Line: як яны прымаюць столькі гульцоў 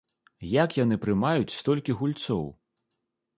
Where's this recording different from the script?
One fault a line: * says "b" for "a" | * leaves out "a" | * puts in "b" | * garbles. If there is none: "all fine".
all fine